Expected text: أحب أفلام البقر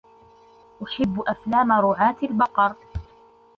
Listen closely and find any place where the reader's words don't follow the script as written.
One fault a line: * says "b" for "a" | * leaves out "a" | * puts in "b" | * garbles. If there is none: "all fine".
* puts in "رعاة"